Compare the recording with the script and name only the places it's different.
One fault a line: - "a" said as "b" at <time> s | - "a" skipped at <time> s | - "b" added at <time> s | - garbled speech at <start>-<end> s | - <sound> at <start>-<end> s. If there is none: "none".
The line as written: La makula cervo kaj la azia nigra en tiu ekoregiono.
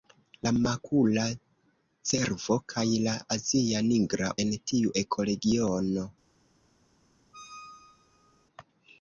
- squeak at 7.3-8.5 s